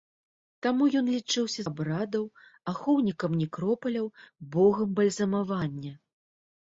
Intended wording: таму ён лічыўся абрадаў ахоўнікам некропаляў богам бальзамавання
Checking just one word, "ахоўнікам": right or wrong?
right